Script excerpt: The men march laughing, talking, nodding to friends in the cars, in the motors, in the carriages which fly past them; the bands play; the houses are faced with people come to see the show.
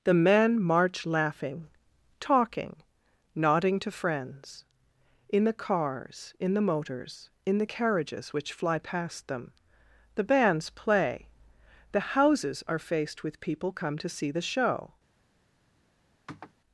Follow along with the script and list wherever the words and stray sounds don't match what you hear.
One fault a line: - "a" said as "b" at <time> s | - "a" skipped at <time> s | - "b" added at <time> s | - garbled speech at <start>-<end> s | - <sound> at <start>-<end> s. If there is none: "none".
- sniff at 16.3-16.5 s